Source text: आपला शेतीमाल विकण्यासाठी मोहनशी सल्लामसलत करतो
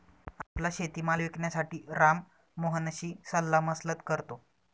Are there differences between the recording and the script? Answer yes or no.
yes